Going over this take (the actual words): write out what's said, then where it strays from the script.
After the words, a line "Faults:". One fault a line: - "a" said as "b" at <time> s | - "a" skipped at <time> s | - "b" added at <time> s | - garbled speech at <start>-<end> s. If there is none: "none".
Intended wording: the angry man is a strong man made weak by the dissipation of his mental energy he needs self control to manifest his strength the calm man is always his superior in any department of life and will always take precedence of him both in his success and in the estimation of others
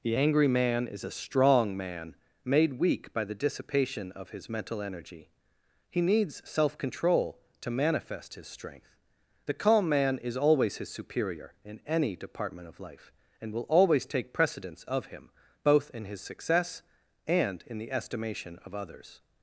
the angry man is a strong man made weak by the dissipation of his mental energy he needs self control to manifest his strength the calm man is always his superior in any department of life and will always take precedence of him both in his success and in the estimation of others
Faults:
none